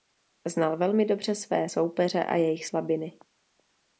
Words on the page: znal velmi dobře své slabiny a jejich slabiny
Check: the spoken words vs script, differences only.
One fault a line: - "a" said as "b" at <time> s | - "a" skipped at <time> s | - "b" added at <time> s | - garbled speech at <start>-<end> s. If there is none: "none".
- "slabiny" said as "soupeře" at 1.7 s